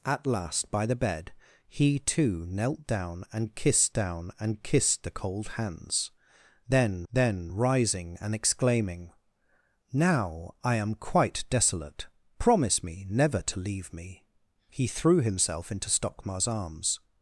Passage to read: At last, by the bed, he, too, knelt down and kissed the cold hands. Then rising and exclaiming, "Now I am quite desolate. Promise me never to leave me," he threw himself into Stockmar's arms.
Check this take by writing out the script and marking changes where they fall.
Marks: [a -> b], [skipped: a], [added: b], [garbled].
At last, by the bed, he, too, knelt down and kissed [added: down and kissed] the cold hands. Then [added: then] rising and exclaiming, "Now I am quite desolate. Promise me never to leave me," he threw himself into Stockmar's arms.